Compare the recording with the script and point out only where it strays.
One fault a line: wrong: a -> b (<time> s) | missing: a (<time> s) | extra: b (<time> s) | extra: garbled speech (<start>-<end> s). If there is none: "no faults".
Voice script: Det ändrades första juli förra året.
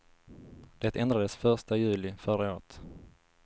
no faults